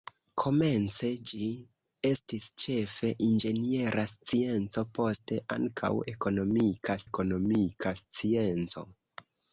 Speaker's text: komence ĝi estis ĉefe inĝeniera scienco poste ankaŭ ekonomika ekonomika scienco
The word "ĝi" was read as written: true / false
true